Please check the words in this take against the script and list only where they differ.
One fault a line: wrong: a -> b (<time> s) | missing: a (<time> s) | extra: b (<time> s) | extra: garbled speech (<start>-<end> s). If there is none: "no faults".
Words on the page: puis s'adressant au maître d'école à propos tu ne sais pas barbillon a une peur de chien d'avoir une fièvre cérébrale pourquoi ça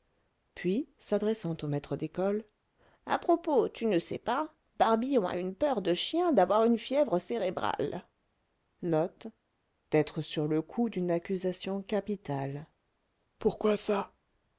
no faults